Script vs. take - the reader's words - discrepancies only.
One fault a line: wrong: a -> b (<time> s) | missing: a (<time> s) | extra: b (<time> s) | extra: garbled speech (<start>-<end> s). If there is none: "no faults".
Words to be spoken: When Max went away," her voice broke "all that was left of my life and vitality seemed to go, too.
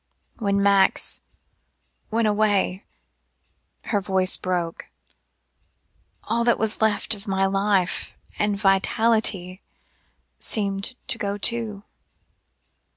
no faults